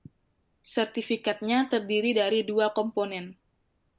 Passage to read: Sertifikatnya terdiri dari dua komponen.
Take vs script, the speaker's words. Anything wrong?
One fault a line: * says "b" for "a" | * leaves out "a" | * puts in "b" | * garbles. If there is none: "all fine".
all fine